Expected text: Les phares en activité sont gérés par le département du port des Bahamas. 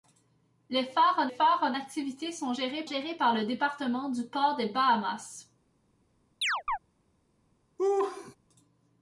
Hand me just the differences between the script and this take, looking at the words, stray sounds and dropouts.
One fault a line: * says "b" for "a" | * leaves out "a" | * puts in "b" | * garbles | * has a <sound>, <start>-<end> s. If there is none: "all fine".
* puts in "phares en"
* puts in "gérés"
* has a chirp, 6.4-6.8 s
* has a laugh, 7.8-8.4 s